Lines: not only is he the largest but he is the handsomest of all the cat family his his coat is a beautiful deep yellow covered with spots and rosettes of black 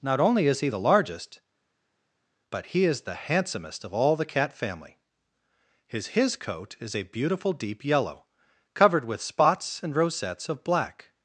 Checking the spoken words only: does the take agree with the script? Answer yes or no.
yes